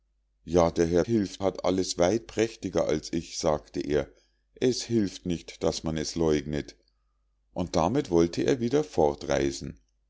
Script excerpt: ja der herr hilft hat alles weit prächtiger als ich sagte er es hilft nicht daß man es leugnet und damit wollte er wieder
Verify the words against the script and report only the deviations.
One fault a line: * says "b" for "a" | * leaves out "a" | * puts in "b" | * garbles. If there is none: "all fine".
all fine